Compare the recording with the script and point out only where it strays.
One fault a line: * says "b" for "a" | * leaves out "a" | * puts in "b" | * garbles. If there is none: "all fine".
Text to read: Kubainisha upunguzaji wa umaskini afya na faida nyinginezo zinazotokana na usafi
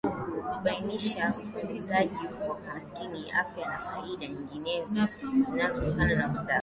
all fine